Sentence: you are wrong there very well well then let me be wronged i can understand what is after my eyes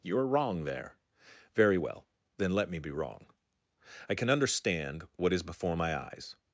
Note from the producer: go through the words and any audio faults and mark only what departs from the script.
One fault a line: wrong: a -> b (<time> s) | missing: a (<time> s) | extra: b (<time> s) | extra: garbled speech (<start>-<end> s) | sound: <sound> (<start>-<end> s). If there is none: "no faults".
missing: well (2.1 s)
wrong: wronged -> wrong (2.9 s)
wrong: after -> before (5.4 s)